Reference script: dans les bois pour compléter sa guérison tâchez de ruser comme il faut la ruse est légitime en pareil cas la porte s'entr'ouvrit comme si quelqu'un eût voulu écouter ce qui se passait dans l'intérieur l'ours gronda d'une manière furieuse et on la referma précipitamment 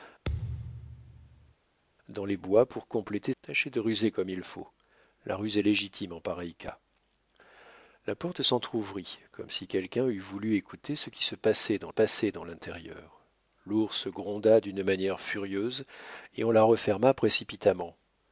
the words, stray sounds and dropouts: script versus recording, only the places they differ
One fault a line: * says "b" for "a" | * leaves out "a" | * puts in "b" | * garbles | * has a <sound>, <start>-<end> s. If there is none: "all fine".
* has a thud, 0.3-1.6 s
* leaves out "sa guérison"
* puts in "passait dans"